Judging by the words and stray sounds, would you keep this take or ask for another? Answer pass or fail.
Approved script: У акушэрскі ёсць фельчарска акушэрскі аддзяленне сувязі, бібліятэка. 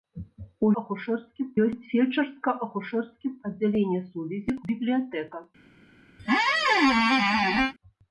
fail